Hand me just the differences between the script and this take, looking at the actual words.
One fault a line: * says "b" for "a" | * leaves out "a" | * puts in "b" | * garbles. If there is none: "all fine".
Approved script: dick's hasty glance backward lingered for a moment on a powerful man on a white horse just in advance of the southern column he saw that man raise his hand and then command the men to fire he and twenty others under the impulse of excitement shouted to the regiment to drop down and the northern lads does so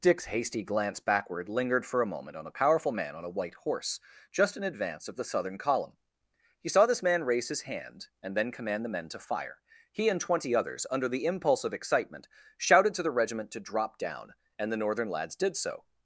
* says "this" for "that"
* says "did" for "does"